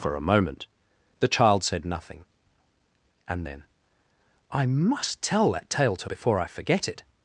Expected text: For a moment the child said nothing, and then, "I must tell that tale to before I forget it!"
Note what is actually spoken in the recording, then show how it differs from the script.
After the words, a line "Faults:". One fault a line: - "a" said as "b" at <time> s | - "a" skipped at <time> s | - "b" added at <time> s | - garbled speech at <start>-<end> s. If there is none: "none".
For a moment the child said nothing, and then, "I must tell that tale to before I forget it!"
Faults:
none